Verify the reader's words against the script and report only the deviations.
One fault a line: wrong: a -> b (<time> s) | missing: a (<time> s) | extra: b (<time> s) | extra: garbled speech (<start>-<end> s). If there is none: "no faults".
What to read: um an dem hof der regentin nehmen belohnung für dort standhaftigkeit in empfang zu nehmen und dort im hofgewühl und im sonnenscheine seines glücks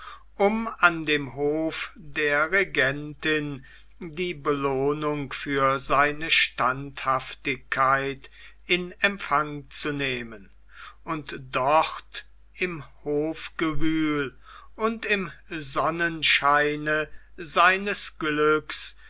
wrong: nehmen -> die (4.0 s)
wrong: dort -> seine (5.8 s)